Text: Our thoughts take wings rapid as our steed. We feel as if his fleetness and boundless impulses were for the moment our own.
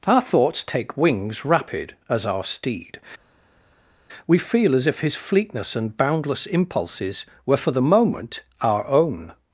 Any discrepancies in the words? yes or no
no